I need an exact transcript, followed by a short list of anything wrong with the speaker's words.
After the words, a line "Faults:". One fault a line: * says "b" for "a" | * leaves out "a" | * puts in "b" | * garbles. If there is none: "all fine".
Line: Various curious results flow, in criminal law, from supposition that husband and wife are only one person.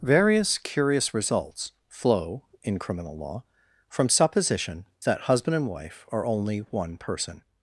Various curious results flow, in criminal law, from supposition that husband and wife are only one person.
Faults:
all fine